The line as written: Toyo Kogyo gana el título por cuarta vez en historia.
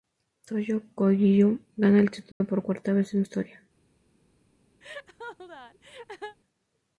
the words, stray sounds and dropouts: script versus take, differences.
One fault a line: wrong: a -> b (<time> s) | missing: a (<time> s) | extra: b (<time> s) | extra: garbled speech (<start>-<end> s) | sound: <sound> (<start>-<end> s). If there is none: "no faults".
sound: dropout (2.3-2.4 s)
sound: laugh (4.8-6.4 s)